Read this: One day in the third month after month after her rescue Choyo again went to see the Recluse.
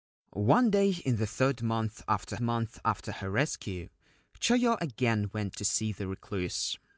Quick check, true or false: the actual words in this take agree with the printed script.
true